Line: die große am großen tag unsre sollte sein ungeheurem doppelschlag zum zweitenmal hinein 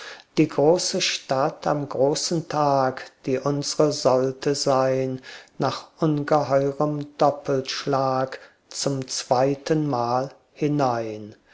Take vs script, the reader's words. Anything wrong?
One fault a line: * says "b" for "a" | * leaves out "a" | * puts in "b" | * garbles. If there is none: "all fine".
* puts in "stadt"
* puts in "die"
* puts in "nach"